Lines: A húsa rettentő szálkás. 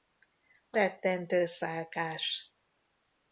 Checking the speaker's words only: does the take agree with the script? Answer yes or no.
no